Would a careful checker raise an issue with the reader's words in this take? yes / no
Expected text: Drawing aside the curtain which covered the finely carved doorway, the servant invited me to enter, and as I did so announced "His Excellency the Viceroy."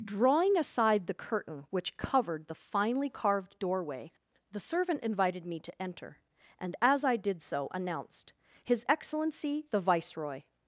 no